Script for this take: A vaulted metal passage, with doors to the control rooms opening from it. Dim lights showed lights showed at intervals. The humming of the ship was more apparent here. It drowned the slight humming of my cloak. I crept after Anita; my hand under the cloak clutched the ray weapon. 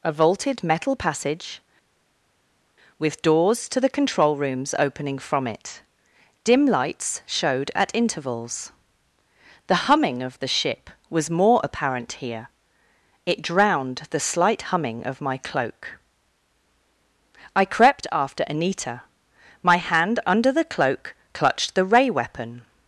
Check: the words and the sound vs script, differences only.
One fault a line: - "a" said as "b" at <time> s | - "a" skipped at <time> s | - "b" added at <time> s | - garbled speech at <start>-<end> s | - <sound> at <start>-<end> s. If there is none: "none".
- "lights showed" skipped at 7.7 s